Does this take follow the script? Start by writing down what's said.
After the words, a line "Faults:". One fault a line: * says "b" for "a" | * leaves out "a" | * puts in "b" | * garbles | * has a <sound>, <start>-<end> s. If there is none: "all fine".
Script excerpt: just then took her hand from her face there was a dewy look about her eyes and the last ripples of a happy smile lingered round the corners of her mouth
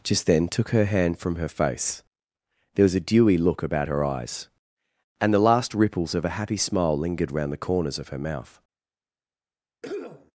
just then took her hand from her face there was a dewy look about her eyes and the last ripples of a happy smile lingered round the corners of her mouth
Faults:
* has a cough, 9.8-10.3 s